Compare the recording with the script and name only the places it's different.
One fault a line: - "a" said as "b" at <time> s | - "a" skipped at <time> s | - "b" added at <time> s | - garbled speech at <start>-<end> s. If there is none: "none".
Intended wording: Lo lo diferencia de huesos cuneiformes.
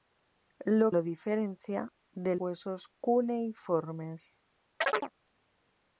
none